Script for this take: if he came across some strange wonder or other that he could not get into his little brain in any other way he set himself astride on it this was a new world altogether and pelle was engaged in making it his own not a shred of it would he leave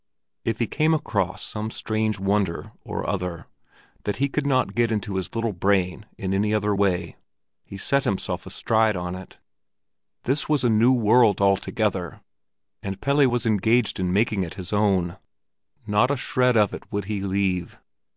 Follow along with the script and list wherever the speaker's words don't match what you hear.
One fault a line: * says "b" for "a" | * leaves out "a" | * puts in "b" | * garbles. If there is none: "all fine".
all fine